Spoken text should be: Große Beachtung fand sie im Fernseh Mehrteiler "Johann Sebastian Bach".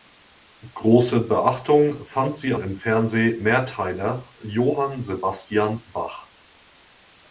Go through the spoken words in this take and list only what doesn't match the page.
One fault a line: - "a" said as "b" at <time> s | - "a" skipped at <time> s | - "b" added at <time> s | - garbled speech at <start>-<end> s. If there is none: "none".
none